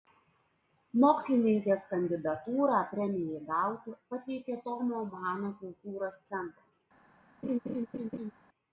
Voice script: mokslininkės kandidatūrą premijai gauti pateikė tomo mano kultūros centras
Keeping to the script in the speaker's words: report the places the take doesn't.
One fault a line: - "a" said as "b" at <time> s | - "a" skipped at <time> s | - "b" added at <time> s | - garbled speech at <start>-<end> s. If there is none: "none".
none